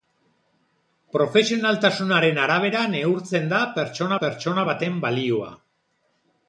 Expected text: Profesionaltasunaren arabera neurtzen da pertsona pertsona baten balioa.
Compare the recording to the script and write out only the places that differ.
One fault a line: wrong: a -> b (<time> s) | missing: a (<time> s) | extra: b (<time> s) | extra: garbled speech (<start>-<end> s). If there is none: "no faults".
no faults